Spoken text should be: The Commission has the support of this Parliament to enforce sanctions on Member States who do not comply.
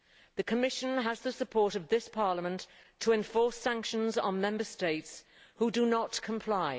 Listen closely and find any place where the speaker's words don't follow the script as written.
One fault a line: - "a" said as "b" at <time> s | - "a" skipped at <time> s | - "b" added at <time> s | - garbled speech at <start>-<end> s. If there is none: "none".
none